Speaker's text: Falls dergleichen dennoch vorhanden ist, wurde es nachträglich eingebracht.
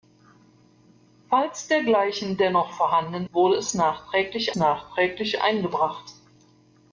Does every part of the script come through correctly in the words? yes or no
no